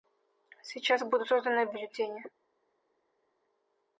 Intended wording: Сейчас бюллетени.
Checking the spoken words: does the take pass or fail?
fail